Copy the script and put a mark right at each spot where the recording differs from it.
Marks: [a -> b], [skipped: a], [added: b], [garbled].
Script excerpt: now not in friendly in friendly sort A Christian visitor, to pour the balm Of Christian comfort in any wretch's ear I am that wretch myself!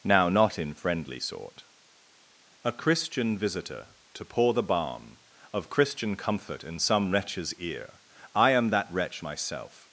now not in friendly [skipped: in friendly] sort A Christian visitor, to pour the balm Of Christian comfort in [any -> some] wretch's ear I am that wretch myself!